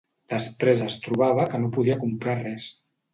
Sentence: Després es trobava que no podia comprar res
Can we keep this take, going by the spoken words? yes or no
yes